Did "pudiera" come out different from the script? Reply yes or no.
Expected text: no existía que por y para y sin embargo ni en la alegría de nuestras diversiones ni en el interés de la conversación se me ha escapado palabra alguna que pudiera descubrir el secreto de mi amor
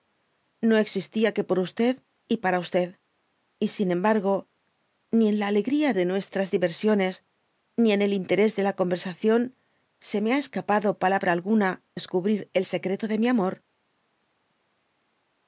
yes